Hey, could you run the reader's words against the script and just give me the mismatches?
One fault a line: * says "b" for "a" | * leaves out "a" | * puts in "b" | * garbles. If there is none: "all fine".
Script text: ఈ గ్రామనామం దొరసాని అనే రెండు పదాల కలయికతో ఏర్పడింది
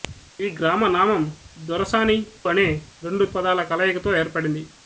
all fine